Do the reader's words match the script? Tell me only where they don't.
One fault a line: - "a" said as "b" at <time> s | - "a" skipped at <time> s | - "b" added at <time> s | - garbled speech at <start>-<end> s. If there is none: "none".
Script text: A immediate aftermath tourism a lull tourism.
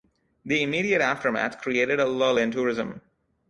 - "A" said as "The" at 0.5 s
- "tourism" said as "created" at 1.6 s
- "in" added at 2.4 s